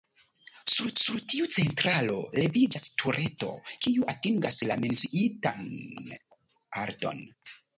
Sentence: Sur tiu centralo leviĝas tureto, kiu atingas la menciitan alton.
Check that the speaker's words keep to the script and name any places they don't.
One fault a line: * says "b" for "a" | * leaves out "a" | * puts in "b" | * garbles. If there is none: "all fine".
* puts in "sur"